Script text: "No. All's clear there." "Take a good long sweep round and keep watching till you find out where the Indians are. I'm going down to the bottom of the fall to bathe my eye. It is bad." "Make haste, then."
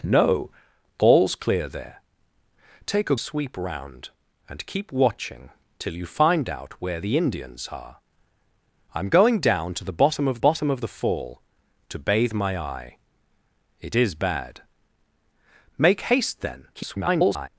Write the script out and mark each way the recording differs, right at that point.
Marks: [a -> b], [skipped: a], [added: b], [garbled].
"No. All's clear there." "Take a [skipped: good long] sweep round and keep watching till you find out where the Indians are. I'm going down to the bottom of [added: bottom of] the fall to bathe my eye. It is bad." "Make haste, then." [garbled]